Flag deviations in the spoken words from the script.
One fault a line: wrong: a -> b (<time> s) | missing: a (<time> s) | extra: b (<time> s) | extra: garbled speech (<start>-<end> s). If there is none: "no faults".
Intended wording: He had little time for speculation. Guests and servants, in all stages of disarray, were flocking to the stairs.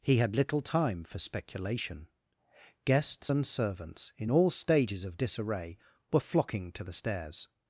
no faults